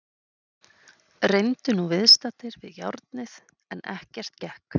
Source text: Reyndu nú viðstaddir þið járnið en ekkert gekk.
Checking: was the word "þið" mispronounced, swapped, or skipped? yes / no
yes